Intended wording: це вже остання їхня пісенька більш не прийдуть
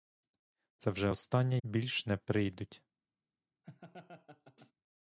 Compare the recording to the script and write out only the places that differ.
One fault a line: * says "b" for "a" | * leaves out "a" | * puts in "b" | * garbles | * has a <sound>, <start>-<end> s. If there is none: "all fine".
* leaves out "їхня пісенька"
* has a laugh, 3.6-4.7 s